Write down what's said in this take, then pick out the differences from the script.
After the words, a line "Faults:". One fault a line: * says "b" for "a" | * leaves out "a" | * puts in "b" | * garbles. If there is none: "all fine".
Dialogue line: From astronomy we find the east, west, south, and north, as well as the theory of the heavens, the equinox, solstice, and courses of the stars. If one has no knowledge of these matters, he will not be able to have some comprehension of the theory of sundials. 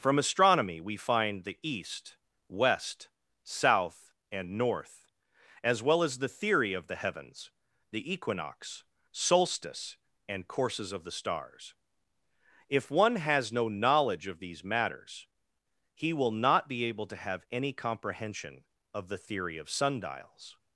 From astronomy we find the east, west, south, and north, as well as the theory of the heavens, the equinox, solstice, and courses of the stars. If one has no knowledge of these matters, he will not be able to have any comprehension of the theory of sundials.
Faults:
* says "any" for "some"